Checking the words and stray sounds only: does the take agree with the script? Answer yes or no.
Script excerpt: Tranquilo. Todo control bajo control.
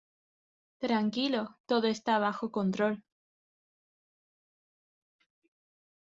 no